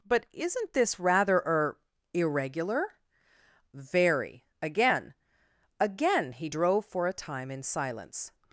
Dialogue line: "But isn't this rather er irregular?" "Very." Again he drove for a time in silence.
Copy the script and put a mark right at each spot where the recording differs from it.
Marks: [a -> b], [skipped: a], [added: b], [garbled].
"But isn't this rather er irregular?" "Very." Again [added: Again] he drove for a time in silence.